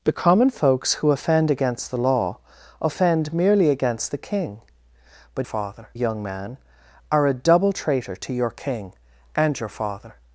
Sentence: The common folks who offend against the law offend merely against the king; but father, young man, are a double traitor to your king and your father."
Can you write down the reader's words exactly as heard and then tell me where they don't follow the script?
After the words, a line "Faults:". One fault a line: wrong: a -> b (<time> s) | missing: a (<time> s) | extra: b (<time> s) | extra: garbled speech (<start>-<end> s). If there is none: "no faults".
The common folks who offend against the law offend merely against the king; but father, young man, are a double traitor to your king and your father."
Faults:
no faults